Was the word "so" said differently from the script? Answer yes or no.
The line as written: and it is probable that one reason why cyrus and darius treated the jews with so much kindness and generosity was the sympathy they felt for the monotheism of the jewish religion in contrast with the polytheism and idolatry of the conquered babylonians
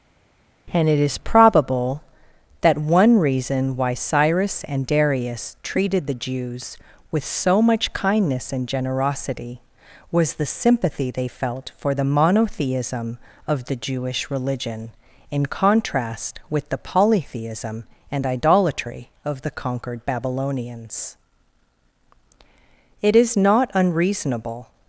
no